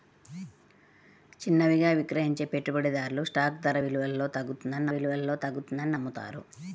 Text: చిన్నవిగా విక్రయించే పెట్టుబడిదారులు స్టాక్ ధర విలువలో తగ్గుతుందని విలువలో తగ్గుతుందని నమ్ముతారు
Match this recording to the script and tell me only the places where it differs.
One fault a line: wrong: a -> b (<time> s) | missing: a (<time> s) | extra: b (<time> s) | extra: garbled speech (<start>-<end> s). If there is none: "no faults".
no faults